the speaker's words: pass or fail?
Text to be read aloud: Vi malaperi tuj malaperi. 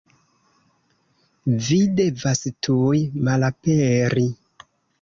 fail